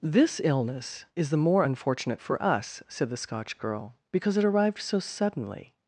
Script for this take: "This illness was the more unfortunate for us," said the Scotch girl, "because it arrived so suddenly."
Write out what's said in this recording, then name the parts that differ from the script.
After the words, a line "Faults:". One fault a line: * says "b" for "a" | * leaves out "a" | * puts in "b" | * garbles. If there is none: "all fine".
"This illness is the more unfortunate for us," said the Scotch girl, "because it arrived so suddenly."
Faults:
* says "is" for "was"